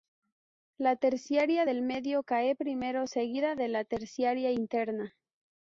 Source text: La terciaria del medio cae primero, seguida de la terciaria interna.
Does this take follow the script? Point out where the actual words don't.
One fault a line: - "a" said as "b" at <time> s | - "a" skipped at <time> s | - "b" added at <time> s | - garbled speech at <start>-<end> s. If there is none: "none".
none